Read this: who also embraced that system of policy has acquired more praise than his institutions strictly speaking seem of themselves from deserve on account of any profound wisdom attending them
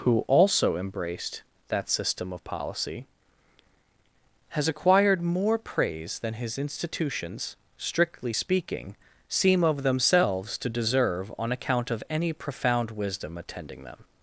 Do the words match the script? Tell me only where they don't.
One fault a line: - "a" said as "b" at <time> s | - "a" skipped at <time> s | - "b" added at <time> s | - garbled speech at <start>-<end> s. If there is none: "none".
- "from" said as "to" at 10.6 s